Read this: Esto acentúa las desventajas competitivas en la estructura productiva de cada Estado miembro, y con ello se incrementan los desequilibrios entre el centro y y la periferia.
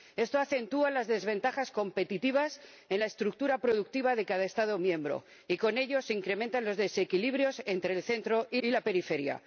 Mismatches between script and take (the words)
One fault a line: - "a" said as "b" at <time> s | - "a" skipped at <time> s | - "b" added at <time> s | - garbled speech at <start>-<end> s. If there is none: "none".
none